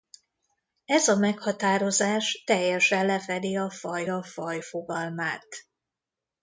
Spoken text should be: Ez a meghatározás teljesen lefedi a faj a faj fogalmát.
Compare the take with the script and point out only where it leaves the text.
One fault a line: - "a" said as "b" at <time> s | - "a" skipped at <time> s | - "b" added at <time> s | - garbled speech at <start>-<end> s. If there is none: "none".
none